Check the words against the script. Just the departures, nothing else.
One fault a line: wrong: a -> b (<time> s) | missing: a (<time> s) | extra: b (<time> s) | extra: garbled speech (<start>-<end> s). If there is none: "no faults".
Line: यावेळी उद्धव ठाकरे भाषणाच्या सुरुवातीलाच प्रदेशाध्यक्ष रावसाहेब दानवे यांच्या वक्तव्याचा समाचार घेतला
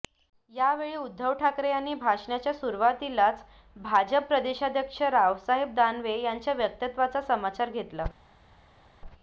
extra: यांनी (1.7 s)
extra: भाजप (3.8 s)